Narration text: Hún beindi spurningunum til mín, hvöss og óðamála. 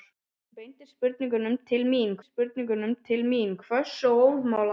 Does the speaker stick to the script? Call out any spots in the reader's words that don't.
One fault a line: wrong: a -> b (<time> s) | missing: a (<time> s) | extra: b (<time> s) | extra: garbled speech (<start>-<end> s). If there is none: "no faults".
extra: spurningunum til mín (2.2 s)